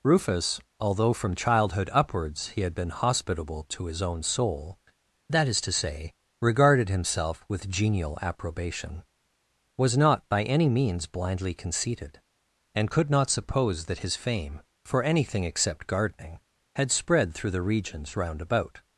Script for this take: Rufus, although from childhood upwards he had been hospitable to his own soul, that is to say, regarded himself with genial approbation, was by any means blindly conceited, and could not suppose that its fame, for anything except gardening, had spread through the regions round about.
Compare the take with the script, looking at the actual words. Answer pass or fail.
fail